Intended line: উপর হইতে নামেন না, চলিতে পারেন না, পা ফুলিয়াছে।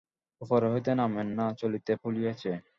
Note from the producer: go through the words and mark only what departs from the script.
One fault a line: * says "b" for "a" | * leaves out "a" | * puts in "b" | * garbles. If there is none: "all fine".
* leaves out "পারেন না পা"